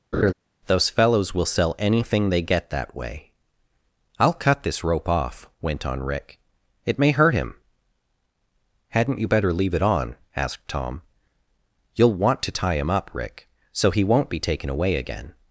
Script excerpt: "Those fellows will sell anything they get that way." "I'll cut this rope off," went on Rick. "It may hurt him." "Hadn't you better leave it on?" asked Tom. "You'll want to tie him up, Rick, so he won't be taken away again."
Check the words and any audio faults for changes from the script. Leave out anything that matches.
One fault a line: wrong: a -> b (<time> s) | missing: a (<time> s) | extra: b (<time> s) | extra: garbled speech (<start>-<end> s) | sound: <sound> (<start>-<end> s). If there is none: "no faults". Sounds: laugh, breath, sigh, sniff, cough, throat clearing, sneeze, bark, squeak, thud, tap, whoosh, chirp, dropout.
sound: laugh (0.1-0.3 s)